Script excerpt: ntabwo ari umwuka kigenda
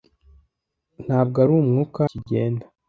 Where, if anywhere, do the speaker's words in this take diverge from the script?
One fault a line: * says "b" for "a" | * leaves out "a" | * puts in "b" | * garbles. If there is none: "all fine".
all fine